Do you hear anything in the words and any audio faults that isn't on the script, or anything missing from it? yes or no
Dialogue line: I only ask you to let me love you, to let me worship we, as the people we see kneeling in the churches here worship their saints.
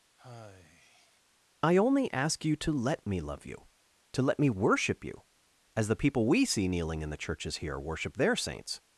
yes